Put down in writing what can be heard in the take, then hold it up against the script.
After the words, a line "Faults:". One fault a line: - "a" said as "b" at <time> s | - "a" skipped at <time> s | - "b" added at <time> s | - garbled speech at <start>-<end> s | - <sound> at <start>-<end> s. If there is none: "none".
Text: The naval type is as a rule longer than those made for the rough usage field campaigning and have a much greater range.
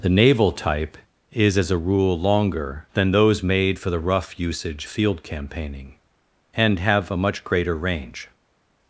The naval type is as a rule longer than those made for the rough usage field campaigning and have a much greater range.
Faults:
none